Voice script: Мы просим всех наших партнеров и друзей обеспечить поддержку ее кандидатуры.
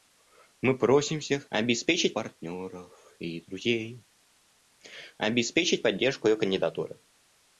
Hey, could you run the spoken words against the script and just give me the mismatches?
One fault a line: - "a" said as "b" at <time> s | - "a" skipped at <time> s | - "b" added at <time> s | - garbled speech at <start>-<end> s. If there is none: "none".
- "наших" said as "обеспечить" at 1.5 s